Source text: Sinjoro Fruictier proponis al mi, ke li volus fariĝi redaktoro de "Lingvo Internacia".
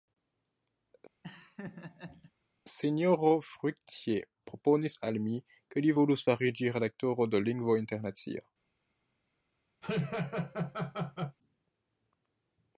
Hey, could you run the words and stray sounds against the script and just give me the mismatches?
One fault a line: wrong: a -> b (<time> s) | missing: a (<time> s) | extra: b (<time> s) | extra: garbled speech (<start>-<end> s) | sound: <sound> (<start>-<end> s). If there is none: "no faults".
sound: laugh (1.2-2.3 s)
sound: laugh (9.8-11.4 s)